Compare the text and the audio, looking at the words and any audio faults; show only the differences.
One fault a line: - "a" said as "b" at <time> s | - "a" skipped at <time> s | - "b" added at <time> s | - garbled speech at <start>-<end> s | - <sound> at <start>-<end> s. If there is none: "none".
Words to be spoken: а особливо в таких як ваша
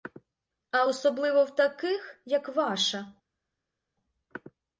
none